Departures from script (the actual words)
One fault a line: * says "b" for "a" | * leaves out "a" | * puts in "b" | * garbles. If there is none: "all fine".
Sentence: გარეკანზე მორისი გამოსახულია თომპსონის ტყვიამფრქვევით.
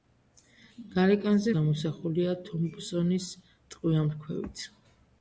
* leaves out "მორისი"